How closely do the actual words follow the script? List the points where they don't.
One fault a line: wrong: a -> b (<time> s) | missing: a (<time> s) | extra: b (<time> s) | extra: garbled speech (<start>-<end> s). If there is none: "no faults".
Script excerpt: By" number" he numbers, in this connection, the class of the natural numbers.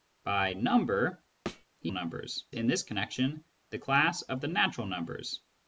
no faults